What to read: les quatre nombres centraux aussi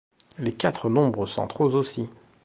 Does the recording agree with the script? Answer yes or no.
yes